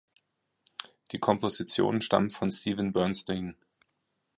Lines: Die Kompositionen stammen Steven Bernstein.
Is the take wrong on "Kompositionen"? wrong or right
right